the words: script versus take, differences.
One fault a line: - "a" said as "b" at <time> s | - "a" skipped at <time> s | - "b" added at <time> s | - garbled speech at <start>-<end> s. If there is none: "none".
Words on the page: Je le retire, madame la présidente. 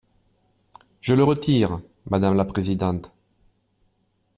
none